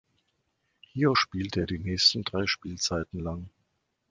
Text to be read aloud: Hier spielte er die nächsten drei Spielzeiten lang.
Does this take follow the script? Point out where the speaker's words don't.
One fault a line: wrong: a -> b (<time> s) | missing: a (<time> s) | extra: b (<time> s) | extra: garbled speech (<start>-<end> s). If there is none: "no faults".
no faults